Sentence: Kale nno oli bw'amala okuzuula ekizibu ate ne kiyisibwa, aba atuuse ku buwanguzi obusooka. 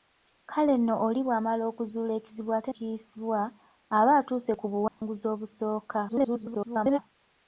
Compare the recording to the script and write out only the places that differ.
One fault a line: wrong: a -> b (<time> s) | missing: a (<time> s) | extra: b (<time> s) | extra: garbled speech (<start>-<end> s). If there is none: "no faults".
missing: ne (2.7 s)
extra: garbled speech (6.1-7.0 s)